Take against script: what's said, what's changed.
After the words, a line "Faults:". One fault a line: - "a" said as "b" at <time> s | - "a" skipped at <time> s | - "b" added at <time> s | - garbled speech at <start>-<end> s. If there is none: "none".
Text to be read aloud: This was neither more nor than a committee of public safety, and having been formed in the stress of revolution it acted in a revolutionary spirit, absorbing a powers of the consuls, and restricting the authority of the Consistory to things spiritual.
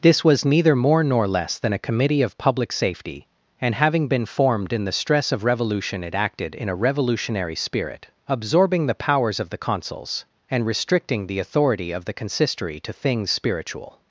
This was neither more nor less than a committee of public safety, and having been formed in the stress of revolution it acted in a revolutionary spirit, absorbing the powers of the consuls, and restricting the authority of the Consistory to things spiritual.
Faults:
- "less" added at 1.3 s
- "a" said as "the" at 8.9 s